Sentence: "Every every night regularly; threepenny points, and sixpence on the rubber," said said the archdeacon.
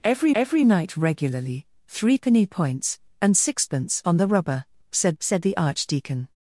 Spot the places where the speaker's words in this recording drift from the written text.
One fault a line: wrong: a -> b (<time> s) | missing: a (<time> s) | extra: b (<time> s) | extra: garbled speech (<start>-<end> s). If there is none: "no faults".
no faults